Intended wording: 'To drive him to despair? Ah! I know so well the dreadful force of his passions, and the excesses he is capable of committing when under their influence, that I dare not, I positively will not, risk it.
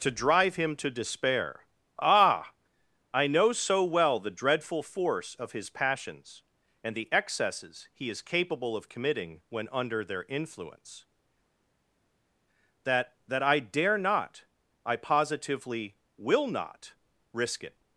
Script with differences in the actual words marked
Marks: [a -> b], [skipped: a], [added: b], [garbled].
'To drive him to despair? Ah! I know so well the dreadful force of his passions, and the excesses he is capable of committing when under their influence, that [added: that] I dare not, I positively will not, risk it.